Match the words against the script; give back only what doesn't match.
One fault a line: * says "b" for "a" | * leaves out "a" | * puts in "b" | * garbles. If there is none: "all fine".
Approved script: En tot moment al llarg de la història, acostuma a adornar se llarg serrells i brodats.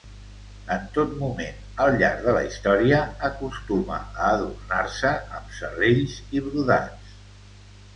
* says "amb" for "llarg"